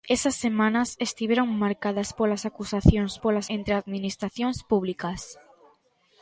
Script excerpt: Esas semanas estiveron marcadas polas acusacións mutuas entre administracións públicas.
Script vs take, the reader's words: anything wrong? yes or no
yes